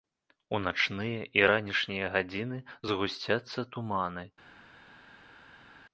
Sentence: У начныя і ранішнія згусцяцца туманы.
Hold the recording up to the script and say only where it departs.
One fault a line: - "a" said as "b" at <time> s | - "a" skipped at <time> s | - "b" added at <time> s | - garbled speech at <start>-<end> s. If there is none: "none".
- "гадзіны" added at 2.2 s